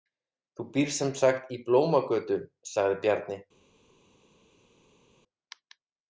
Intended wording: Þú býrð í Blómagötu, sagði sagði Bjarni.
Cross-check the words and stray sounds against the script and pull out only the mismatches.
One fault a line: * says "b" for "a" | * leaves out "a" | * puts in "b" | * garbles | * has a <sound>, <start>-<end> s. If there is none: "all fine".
* puts in "sem sagt"
* leaves out "sagði"